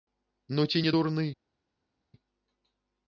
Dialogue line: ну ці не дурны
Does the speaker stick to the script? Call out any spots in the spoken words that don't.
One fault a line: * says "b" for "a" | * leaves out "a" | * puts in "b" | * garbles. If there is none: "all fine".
all fine